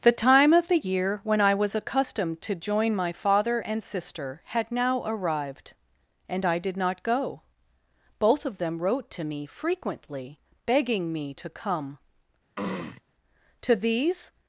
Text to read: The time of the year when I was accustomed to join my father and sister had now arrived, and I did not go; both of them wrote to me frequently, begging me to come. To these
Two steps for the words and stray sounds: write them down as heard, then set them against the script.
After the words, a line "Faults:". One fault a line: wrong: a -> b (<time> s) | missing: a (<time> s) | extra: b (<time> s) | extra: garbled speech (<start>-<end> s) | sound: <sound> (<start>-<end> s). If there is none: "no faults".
The time of the year when I was accustomed to join my father and sister had now arrived, and I did not go; both of them wrote to me frequently, begging me to come. To these
Faults:
sound: throat clearing (12.6-13.0 s)